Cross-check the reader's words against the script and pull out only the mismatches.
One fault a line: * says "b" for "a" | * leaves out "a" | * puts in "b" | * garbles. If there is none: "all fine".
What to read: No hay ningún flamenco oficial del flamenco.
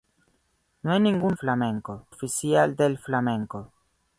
all fine